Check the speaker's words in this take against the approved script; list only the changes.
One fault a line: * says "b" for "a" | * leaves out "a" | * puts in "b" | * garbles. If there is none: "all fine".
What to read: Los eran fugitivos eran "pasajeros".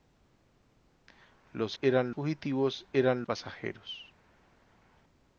all fine